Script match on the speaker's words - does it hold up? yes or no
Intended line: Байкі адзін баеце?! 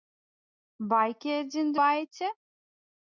yes